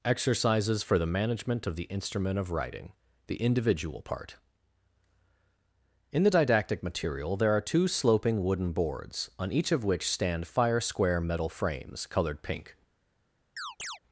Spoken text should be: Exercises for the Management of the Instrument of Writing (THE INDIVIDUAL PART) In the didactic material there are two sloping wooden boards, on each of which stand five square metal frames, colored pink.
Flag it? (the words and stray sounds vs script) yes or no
yes